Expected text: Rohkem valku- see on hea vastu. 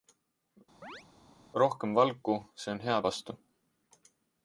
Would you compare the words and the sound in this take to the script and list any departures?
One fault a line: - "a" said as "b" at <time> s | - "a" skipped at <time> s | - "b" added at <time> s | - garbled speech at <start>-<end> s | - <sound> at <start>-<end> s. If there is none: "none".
- chirp at 0.8-1.0 s